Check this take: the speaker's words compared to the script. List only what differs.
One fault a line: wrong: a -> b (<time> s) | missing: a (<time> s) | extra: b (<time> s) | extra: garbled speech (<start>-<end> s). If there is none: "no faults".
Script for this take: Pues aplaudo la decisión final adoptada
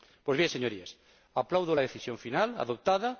extra: bien señorías (0.4 s)